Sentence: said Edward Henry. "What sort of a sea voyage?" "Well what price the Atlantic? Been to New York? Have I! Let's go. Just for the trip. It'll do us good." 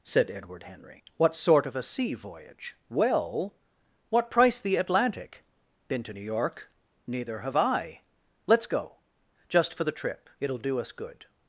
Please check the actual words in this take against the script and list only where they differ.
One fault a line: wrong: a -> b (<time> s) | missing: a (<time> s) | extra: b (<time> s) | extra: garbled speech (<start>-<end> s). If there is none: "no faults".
extra: Neither (7.0 s)